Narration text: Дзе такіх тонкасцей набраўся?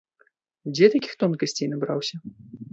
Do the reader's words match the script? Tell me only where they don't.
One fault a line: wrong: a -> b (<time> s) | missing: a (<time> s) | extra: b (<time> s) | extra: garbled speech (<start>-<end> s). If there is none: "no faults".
no faults